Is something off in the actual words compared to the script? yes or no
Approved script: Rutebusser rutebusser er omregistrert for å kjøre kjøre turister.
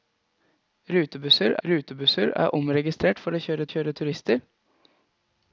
no